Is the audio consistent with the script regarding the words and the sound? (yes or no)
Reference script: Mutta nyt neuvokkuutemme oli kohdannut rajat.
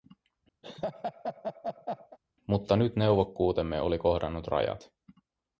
no